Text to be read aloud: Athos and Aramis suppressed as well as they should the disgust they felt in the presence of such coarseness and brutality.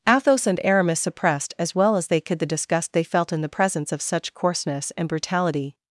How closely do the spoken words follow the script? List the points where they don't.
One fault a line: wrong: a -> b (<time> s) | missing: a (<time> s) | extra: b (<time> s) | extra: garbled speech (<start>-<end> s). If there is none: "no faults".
wrong: should -> could (2.2 s)